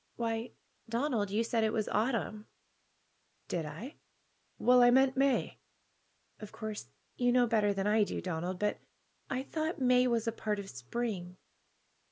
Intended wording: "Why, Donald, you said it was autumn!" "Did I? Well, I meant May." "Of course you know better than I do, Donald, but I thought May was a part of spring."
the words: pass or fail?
pass